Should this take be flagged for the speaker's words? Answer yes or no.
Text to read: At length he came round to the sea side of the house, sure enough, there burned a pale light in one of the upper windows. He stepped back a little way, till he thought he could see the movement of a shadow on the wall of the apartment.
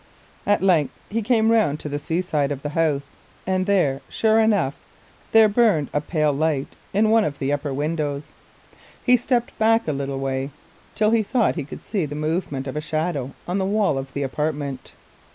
yes